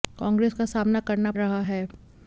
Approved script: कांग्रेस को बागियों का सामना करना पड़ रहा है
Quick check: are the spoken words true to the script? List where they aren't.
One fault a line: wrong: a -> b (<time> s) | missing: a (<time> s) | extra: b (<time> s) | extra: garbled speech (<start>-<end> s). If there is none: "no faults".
missing: को बागियों (0.5 s)
missing: पड़ (1.3 s)